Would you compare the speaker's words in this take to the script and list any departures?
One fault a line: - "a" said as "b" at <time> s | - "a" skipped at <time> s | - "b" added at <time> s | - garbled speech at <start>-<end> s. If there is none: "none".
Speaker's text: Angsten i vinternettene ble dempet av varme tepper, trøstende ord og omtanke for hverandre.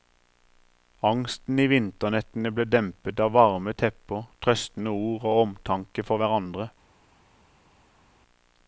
none